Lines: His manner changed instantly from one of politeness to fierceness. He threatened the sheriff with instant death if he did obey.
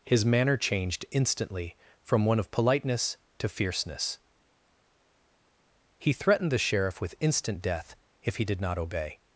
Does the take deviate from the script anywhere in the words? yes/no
yes